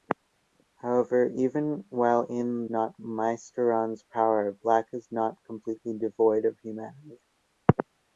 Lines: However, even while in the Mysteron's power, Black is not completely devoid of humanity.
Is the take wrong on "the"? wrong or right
wrong